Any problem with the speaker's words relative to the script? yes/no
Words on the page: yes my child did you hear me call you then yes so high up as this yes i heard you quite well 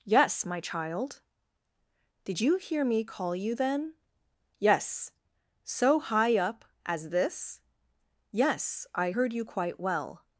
no